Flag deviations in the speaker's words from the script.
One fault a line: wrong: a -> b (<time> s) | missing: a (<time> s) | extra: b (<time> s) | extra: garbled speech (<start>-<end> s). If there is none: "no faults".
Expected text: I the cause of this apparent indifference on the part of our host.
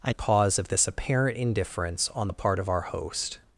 no faults